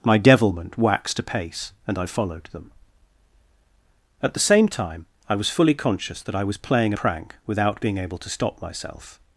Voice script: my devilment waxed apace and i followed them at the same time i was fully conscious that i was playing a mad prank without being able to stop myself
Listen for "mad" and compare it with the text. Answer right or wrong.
wrong